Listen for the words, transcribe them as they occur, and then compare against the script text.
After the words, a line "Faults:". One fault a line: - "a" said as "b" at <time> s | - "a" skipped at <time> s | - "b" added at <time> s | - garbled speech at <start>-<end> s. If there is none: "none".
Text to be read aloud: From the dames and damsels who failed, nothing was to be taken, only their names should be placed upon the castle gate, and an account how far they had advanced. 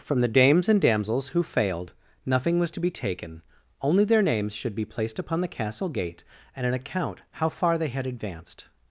From the dames and damsels who failed, nothing was to be taken, only their names should be placed upon the castle gate, and an account how far they had advanced.
Faults:
none